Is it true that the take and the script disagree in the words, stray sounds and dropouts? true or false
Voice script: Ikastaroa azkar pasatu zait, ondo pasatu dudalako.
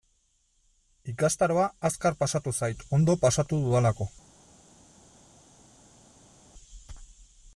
false